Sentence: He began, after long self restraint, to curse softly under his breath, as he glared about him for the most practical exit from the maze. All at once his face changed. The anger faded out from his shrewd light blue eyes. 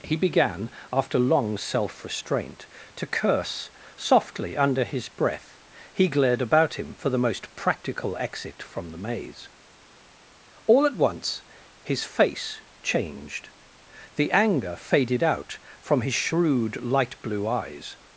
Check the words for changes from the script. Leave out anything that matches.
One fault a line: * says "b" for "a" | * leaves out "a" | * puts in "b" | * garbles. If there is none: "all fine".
* leaves out "as"